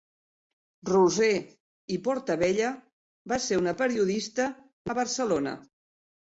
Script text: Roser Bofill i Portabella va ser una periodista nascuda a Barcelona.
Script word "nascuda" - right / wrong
wrong